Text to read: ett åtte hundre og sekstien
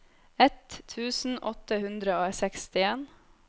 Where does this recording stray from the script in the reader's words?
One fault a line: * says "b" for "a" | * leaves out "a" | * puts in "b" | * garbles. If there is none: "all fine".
* puts in "tusen"